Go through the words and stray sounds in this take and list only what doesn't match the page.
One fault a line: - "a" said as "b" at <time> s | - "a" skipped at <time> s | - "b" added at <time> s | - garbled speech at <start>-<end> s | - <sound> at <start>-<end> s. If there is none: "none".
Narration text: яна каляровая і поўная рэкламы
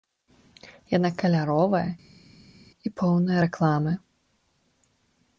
none